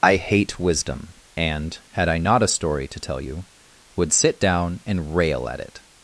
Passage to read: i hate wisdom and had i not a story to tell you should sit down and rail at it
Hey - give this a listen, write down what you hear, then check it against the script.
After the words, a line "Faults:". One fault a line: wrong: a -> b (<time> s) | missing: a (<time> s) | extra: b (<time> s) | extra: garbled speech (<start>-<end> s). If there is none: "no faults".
i hate wisdom and had i not a story to tell you would sit down and rail at it
Faults:
wrong: should -> would (4.0 s)